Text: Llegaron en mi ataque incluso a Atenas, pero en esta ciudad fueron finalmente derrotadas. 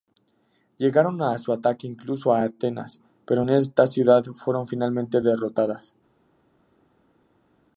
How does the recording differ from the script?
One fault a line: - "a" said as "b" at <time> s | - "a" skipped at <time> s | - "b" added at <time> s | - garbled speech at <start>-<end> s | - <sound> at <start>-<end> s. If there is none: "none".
- "mi" said as "su" at 1.4 s